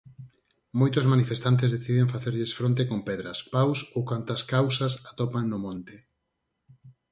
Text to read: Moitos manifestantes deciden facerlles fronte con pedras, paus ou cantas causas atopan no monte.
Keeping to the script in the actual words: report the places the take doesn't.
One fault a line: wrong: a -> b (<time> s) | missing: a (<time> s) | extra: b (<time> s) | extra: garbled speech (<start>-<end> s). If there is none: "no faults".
no faults